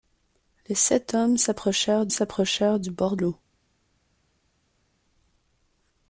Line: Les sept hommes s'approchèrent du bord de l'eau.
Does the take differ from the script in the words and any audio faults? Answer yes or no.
yes